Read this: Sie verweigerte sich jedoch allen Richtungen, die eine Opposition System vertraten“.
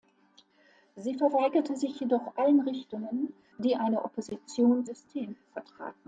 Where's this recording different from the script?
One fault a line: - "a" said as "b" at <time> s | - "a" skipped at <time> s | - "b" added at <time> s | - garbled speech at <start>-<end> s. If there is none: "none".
none